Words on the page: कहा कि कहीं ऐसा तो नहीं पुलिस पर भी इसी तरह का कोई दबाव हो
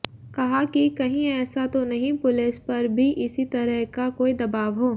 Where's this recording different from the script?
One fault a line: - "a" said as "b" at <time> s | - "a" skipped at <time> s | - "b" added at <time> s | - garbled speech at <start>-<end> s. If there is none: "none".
none